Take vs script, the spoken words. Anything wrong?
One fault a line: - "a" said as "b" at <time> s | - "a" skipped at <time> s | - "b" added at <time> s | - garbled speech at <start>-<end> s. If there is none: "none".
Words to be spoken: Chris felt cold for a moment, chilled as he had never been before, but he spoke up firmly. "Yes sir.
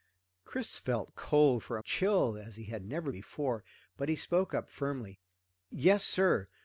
- "moment" skipped at 1.8 s
- "been" skipped at 3.1 s